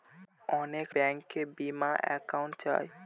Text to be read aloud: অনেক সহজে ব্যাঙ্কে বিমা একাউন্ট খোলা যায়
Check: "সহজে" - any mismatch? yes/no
yes